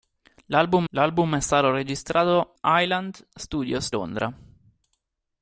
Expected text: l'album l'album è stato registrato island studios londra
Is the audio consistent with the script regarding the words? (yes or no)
yes